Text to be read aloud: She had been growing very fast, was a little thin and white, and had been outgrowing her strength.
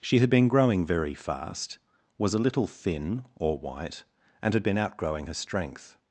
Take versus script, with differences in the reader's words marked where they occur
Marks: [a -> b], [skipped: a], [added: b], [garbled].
She had been growing very fast, was a little thin [and -> or] white, and had been outgrowing her strength.